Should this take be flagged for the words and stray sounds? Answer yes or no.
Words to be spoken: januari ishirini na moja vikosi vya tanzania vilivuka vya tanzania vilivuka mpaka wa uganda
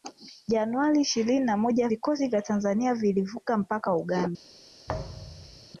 yes